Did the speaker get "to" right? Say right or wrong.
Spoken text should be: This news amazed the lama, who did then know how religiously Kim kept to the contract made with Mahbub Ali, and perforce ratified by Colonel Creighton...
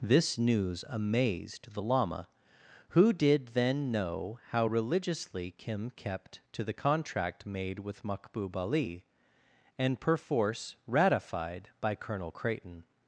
right